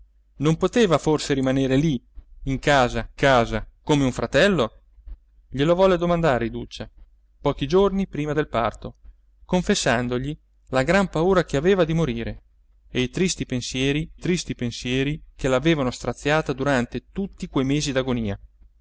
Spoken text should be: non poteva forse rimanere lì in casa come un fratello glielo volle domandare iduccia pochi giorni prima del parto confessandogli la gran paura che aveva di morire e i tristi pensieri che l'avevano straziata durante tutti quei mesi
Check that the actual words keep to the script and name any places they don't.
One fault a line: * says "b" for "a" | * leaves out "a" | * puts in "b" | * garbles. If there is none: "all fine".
* puts in "casa"
* puts in "tristi pensieri"